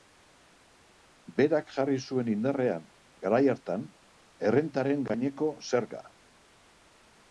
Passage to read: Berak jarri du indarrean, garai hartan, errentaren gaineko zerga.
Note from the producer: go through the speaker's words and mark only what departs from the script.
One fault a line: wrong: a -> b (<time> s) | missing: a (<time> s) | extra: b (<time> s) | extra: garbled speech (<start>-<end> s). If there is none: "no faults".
wrong: du -> zuen (2.1 s)